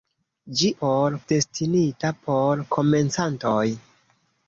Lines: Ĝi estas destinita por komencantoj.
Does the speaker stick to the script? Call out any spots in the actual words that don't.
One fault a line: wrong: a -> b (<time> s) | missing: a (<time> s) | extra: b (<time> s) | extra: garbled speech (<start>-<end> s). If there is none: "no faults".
wrong: estas -> por (0.8 s)